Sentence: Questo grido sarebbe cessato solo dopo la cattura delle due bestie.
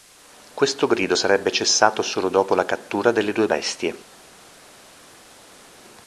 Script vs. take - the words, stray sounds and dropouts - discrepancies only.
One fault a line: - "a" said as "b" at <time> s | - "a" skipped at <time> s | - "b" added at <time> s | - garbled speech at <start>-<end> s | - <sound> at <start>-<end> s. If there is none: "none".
none